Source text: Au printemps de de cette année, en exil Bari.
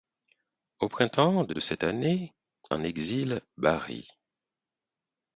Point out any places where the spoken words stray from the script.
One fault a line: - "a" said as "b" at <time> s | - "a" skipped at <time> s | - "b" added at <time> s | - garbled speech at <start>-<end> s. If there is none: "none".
none